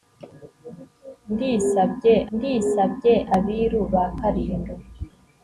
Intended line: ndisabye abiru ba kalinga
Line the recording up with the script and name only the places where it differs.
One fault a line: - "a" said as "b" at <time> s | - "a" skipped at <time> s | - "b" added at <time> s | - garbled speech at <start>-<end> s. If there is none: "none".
- "ndisabye" added at 2.3 s